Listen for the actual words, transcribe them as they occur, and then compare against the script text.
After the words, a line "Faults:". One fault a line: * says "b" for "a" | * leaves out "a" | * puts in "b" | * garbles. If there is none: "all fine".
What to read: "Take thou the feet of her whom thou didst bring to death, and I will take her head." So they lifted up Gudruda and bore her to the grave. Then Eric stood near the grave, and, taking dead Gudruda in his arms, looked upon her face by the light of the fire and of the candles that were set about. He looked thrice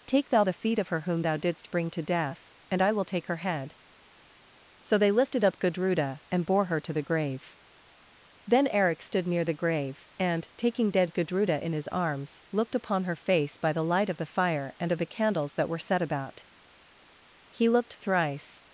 "Take thou the feet of her whom thou didst bring to death, and I will take her head." So they lifted up Gudruda and bore her to the grave. Then Eric stood near the grave, and, taking dead Gudruda in his arms, looked upon her face by the light of the fire and of the candles that were set about. He looked thrice
Faults:
all fine